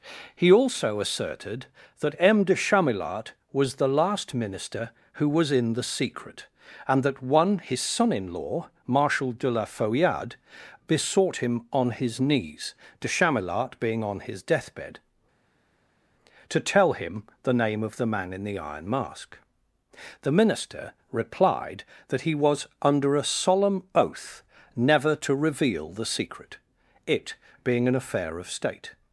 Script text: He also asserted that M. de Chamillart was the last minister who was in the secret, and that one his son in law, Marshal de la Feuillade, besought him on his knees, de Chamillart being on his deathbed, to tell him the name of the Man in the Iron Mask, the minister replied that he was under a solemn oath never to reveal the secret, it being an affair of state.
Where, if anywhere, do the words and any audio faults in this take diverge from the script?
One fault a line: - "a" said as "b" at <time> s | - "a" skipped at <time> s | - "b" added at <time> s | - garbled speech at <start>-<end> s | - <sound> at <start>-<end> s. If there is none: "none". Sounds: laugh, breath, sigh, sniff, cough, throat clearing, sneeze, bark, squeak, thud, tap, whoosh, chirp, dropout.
none